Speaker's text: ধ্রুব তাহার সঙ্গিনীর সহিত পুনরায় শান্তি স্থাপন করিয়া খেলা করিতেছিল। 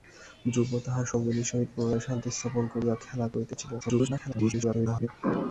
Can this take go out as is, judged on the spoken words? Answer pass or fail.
fail